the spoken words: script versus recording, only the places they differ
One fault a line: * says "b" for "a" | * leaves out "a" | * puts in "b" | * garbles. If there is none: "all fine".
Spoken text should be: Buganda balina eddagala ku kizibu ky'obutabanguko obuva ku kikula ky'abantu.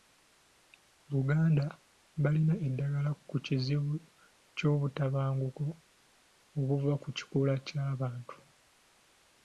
all fine